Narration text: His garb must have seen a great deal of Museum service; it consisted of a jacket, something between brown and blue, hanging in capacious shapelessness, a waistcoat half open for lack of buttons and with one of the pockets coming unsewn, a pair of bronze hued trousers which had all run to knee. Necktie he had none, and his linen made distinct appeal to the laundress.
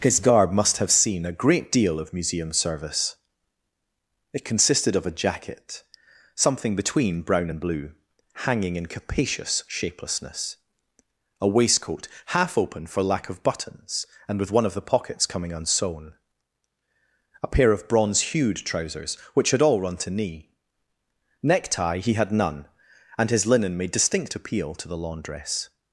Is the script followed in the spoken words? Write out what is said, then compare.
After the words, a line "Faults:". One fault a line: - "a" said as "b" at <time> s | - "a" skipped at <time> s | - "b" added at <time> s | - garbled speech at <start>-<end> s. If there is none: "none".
His garb must have seen a great deal of Museum service; it consisted of a jacket, something between brown and blue, hanging in capacious shapelessness, a waistcoat half open for lack of buttons and with one of the pockets coming unsewn, a pair of bronze hued trousers which had all run to knee. Necktie he had none, and his linen made distinct appeal to the laundress.
Faults:
none